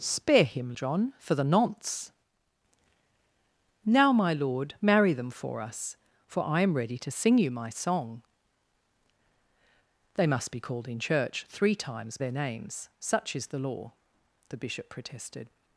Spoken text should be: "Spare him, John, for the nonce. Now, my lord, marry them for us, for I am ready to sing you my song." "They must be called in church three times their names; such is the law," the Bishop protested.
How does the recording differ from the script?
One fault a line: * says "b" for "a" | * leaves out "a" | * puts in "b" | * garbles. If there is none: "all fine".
all fine